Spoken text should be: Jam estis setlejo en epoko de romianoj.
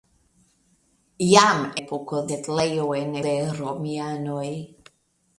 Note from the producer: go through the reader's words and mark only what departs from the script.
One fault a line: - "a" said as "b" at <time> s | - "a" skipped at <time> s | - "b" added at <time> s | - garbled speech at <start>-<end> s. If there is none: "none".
- "estis" said as "epoko" at 1.8 s
- "epoko" skipped at 3.2 s